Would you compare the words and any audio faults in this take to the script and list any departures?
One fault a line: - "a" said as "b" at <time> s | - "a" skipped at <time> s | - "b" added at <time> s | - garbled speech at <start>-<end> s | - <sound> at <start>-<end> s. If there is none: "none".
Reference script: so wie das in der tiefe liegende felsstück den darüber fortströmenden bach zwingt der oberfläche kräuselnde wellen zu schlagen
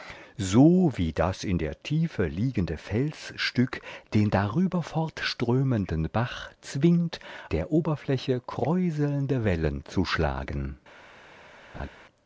- laugh at 11.7-11.9 s